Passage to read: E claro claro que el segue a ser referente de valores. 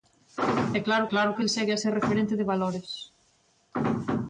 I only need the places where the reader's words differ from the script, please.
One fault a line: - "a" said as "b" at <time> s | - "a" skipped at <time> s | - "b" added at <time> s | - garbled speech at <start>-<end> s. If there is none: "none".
none